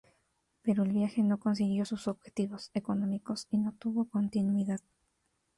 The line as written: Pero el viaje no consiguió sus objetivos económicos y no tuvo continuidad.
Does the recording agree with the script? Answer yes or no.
yes